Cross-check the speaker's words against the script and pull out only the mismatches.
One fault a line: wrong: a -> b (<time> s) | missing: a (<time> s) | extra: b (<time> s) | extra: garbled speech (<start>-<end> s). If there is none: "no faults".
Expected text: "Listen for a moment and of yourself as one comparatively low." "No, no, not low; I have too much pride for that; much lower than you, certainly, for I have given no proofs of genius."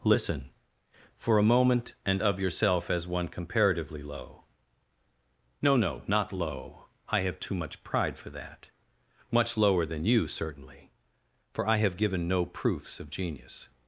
no faults